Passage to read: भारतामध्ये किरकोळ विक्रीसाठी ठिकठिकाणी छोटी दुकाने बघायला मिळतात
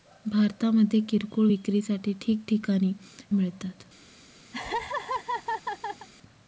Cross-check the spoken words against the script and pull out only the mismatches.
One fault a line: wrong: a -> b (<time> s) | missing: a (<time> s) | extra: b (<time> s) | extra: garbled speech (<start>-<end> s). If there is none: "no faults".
missing: छोटी दुकाने बघायला (2.9 s)